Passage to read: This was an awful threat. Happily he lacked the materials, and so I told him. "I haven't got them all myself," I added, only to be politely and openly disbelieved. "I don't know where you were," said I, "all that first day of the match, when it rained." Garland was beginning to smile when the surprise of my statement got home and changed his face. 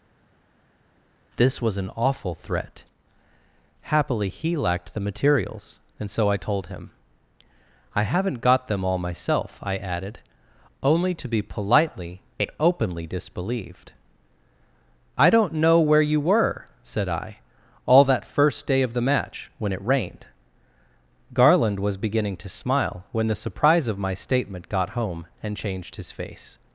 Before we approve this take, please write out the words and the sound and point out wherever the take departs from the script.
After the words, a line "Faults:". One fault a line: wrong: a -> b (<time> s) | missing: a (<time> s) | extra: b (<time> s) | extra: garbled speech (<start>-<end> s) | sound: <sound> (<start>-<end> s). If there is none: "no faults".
This was an awful threat. Happily he lacked the materials, and so I told him. "I haven't got them all myself," I added, only to be politely and openly disbelieved. "I don't know where you were," said I, "all that first day of the match, when it rained." Garland was beginning to smile when the surprise of my statement got home and changed his face.
Faults:
no faults